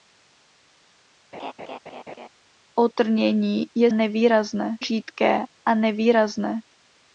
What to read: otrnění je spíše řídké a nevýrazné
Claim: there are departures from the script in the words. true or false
true